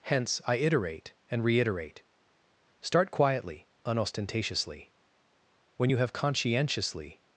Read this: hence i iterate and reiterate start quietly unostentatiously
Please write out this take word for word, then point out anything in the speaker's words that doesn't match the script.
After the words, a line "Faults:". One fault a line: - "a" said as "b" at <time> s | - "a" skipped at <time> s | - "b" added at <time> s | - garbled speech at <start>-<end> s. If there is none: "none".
hence i iterate and reiterate start quietly unostentatiously when you have conscientiously
Faults:
- "when you have conscientiously" added at 5.8 s